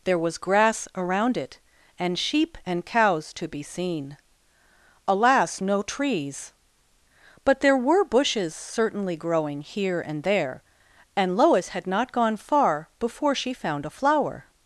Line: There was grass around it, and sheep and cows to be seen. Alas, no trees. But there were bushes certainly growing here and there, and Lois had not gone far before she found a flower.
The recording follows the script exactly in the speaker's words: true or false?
true